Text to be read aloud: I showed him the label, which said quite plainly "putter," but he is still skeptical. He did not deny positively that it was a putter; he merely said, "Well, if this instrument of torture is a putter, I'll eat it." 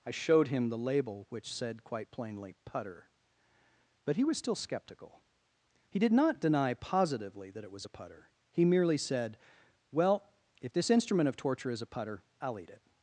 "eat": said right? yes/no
yes